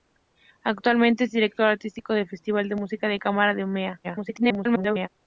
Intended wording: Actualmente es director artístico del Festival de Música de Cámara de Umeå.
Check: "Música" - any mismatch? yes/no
no